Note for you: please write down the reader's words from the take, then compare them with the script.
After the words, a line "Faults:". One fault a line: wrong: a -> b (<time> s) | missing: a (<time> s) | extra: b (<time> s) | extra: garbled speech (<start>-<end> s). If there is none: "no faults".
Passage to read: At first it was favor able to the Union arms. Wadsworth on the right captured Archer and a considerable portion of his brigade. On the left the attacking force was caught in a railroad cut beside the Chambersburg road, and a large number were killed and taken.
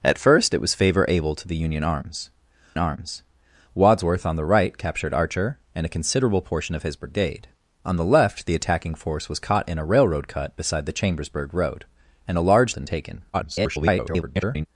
At first it was favor able to the Union arms arms. Wadsworth on the right captured Archer and a considerable portion of his brigade. On the left the attacking force was caught in a railroad cut beside the Chambersburg road, and a large and taken. [garbled]
Faults:
extra: arms (2.8 s)
missing: number were killed (12.7 s)
extra: garbled speech (13.3-14.7 s)